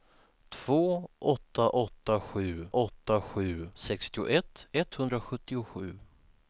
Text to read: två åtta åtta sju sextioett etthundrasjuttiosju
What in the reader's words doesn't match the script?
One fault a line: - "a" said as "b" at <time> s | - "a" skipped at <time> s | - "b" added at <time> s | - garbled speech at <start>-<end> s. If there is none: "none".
- "åtta sju" added at 2.7 s